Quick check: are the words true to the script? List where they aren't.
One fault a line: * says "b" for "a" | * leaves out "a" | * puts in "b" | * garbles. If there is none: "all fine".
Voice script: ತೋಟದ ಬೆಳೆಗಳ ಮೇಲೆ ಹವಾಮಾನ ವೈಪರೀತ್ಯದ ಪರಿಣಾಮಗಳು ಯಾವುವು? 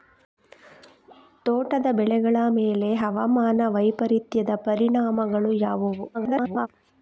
* garbles